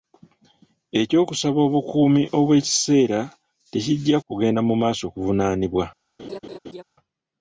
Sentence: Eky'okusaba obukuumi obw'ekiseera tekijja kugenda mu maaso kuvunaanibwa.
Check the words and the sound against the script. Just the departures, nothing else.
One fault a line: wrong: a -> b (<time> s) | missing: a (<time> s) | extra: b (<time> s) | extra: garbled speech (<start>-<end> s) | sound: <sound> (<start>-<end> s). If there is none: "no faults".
sound: laugh (6.2-6.8 s)